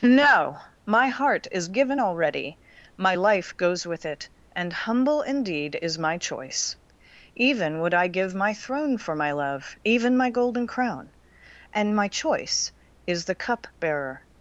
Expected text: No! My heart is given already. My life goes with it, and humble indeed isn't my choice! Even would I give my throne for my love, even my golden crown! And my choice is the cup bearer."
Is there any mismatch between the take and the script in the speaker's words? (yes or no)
yes